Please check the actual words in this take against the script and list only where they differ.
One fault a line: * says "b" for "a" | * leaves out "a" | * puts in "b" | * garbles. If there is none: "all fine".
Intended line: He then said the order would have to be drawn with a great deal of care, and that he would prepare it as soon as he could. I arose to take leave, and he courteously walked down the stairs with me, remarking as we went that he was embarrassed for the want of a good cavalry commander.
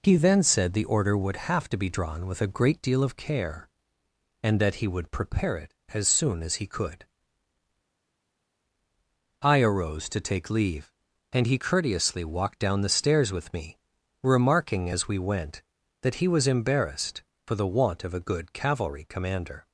all fine